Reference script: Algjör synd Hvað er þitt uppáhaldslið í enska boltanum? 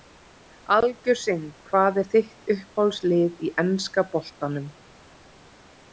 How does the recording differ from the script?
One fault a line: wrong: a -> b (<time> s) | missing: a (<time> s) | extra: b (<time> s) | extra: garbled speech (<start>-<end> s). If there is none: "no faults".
no faults